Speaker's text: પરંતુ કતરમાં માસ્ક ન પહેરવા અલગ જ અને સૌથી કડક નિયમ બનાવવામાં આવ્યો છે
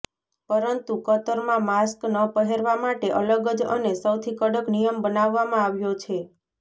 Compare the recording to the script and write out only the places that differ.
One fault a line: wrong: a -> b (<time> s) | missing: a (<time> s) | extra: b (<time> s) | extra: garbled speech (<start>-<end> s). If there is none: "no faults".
extra: માટે (2.8 s)